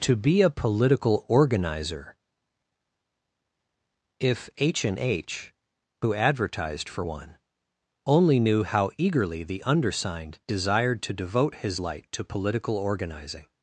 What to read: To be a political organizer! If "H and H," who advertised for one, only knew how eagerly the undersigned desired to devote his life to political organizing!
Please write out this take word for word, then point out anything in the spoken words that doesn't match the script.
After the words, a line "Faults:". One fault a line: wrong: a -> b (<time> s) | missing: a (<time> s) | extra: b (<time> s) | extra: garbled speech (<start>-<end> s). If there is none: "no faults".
To be a political organizer! If "H and H," who advertised for one, only knew how eagerly the undersigned desired to devote his light to political organizing!
Faults:
wrong: life -> light (11.8 s)